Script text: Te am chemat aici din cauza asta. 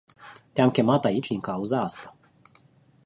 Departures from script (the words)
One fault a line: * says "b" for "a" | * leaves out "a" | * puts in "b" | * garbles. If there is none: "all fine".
all fine